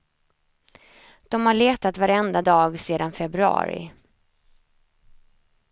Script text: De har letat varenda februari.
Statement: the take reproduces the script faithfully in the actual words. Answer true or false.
false